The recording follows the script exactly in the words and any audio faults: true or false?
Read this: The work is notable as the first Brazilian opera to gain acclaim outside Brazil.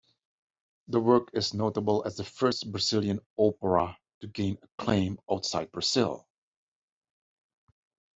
true